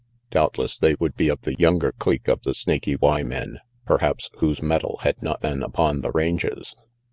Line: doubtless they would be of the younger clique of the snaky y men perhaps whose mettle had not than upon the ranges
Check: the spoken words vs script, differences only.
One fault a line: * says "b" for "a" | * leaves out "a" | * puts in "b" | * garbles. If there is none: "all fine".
all fine